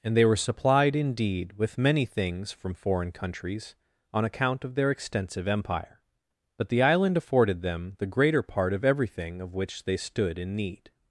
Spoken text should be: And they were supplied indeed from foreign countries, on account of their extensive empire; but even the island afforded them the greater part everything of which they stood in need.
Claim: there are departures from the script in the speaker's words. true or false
true